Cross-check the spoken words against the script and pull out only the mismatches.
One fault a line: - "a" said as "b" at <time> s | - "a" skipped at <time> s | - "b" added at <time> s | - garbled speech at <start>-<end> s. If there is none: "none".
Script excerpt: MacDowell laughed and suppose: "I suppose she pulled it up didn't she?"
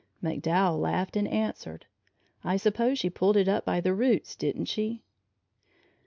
- "suppose" said as "answered" at 1.3 s
- "by the roots" added at 3.7 s